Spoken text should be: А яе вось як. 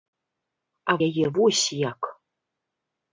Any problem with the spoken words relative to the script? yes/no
no